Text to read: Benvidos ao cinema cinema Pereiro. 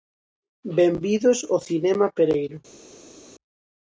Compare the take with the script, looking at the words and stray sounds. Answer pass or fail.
fail